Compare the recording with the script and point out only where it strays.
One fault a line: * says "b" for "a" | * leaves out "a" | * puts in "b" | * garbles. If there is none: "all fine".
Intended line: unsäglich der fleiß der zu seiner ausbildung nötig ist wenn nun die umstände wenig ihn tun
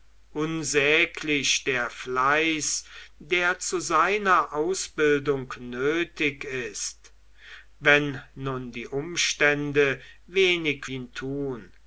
all fine